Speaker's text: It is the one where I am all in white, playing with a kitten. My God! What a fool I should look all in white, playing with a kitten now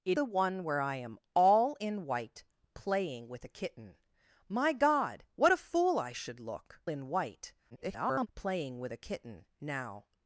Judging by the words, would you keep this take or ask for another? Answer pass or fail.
fail